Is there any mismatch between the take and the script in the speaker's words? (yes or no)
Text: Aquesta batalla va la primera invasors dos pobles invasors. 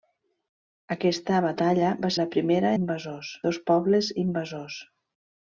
no